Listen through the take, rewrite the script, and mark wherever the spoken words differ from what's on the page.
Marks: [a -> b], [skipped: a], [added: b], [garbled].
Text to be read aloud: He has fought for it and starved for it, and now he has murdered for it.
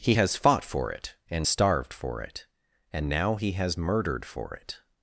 He has fought for it and starved for it, and now he has murdered for it.